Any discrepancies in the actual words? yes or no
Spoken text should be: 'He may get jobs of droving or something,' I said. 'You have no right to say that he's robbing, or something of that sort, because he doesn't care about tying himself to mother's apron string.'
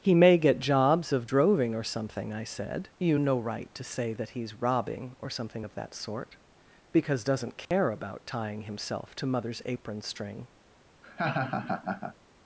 yes